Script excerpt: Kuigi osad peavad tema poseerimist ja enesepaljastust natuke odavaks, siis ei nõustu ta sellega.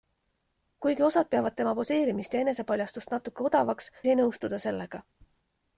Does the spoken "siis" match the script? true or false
false